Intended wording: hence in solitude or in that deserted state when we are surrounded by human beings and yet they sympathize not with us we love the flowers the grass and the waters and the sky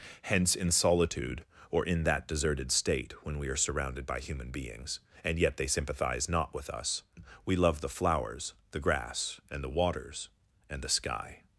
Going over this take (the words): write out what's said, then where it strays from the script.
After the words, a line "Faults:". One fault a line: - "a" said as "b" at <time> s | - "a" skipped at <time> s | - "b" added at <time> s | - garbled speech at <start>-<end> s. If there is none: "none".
hence in solitude or in that deserted state when we are surrounded by human beings and yet they sympathize not with us we love the flowers the grass and the waters and the sky
Faults:
none